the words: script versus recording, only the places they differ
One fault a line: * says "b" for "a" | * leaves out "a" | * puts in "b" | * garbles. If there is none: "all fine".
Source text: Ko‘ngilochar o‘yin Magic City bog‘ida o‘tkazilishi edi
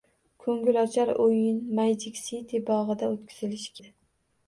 all fine